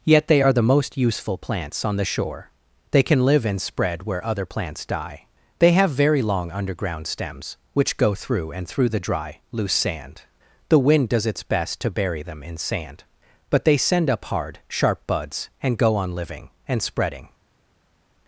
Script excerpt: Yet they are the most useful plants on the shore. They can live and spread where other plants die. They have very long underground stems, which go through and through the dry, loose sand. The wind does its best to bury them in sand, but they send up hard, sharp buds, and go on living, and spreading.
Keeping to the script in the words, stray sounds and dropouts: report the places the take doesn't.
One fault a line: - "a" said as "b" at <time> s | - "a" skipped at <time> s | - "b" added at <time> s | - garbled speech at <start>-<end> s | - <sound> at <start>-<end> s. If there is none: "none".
none